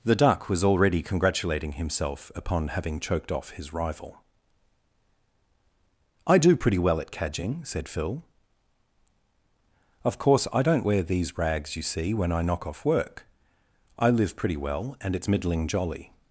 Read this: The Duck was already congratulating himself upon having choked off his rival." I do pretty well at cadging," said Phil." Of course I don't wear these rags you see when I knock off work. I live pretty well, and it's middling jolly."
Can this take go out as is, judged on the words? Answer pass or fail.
pass